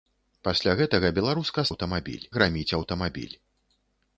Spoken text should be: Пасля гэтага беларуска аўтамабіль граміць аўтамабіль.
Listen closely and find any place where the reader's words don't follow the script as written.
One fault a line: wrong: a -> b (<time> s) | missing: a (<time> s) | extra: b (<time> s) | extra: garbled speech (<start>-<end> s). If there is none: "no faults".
no faults